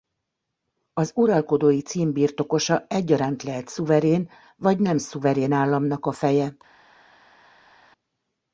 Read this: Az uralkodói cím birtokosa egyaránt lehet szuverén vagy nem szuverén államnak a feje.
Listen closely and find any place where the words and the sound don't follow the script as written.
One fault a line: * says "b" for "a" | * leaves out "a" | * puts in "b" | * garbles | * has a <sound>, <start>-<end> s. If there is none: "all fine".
all fine